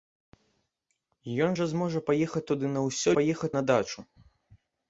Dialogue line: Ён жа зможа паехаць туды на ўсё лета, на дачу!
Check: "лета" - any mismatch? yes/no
yes